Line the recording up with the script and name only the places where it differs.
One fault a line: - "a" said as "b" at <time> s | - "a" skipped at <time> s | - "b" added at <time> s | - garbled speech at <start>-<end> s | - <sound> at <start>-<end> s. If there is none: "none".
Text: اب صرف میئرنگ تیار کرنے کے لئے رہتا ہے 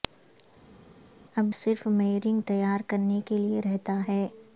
none